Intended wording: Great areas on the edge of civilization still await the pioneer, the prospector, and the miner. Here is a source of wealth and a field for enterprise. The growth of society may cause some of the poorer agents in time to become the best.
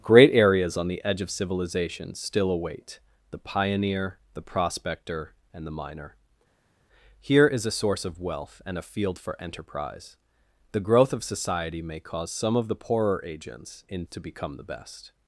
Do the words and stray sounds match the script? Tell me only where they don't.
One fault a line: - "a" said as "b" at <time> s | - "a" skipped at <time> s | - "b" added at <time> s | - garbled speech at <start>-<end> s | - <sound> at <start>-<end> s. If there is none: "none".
- "time" skipped at 14.0 s